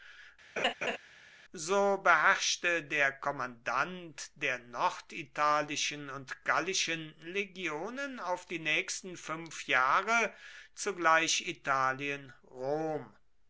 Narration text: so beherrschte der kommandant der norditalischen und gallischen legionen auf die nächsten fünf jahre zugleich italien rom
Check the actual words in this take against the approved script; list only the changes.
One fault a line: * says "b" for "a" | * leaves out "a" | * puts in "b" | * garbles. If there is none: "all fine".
all fine